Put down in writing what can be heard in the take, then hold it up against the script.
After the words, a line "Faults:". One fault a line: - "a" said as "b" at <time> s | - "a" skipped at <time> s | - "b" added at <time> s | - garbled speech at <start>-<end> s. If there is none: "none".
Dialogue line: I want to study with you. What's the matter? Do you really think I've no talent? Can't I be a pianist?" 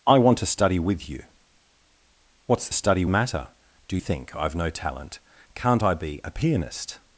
I want to study with you. What's study matter? Do think I've no talent? Can't I be a pianist?"
Faults:
- "the" said as "study" at 2.7 s
- "you really" skipped at 4.0 s